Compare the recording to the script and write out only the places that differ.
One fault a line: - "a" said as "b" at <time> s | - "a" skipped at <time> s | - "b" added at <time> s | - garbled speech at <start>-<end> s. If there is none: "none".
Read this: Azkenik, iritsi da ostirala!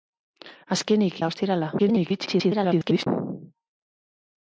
- "iritsi" skipped at 1.2 s
- garbled speech at 1.8-3.1 s